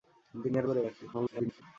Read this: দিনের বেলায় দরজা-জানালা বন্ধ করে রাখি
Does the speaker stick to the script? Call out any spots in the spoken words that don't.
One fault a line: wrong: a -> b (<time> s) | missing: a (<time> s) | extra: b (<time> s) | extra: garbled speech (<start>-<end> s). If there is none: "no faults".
missing: বেলায় দরজা-জানালা বন্ধ (0.7 s)
extra: garbled speech (1.1-1.6 s)